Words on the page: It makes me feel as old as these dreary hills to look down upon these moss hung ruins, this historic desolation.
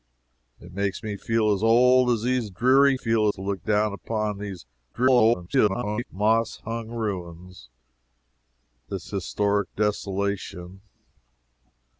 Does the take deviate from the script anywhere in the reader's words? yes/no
yes